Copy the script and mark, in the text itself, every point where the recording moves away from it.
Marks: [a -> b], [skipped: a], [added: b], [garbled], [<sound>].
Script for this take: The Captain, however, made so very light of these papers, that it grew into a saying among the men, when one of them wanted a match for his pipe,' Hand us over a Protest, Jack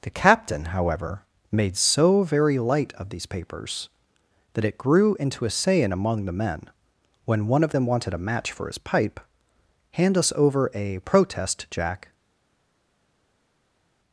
The Captain, however, made so very light of these papers, that it grew into a saying among the men, when one of them wanted a match for his pipe,' Hand us over a Protest, Jack